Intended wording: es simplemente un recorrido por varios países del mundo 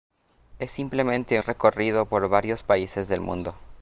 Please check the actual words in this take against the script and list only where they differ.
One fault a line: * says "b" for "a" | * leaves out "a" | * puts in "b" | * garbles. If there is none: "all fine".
* leaves out "un"